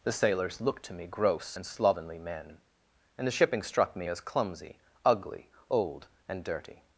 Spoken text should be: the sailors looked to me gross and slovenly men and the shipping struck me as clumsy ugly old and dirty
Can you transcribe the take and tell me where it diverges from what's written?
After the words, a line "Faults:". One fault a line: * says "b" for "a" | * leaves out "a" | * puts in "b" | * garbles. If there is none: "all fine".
the sailors looked to me gross and slovenly men and the shipping struck me as clumsy ugly old and dirty
Faults:
all fine